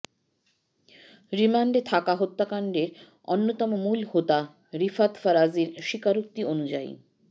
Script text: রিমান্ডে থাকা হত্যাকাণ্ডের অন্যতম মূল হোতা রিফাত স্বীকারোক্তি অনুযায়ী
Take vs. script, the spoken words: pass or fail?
fail